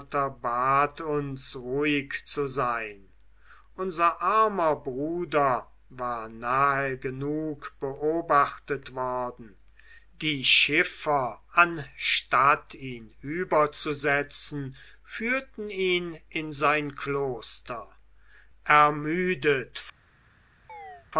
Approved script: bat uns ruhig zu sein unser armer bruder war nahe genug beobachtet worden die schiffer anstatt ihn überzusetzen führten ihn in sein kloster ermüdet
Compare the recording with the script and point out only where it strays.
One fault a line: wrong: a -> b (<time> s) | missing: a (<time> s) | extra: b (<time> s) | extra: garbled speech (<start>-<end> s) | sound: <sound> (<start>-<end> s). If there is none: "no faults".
sound: chirp (20.7-21.1 s)